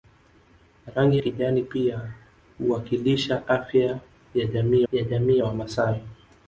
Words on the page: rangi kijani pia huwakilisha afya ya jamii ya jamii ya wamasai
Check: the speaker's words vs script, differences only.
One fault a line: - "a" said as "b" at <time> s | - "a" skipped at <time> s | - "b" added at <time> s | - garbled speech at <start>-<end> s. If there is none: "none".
none